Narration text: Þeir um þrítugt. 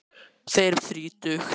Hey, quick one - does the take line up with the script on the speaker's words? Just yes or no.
yes